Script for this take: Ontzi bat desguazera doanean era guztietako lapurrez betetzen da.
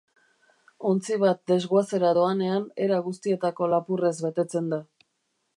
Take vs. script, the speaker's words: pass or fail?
pass